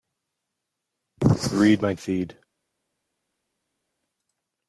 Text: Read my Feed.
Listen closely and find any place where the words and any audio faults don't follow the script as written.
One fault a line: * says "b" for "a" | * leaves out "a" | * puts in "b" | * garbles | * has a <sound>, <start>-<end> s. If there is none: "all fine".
all fine